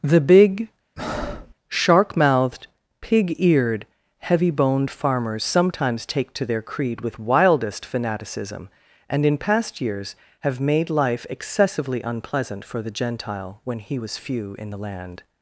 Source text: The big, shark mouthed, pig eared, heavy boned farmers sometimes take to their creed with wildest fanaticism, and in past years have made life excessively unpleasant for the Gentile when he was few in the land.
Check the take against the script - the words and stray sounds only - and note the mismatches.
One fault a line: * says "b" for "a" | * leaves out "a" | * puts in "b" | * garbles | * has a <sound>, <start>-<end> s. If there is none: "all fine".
* has a breath, 1.0-1.5 s